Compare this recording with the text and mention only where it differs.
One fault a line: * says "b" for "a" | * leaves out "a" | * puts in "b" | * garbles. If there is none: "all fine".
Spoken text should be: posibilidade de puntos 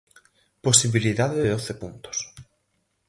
* puts in "doce"